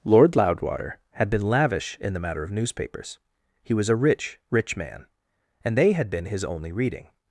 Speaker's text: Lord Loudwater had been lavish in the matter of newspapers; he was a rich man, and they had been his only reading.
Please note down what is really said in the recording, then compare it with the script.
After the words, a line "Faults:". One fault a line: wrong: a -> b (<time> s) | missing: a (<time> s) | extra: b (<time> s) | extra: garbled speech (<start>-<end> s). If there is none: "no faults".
Lord Loudwater had been lavish in the matter of newspapers; he was a rich rich man, and they had been his only reading.
Faults:
extra: rich (4.5 s)